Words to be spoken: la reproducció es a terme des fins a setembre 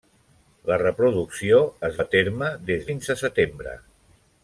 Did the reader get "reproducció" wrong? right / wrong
right